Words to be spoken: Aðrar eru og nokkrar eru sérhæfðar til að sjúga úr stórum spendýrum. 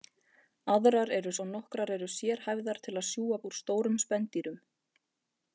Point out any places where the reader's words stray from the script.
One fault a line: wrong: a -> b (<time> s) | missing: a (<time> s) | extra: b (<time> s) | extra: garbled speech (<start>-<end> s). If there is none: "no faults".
no faults